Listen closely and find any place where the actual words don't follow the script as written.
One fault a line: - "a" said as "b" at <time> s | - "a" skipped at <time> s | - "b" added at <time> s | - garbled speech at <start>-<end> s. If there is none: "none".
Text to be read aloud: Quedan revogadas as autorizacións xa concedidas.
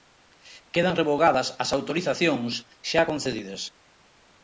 none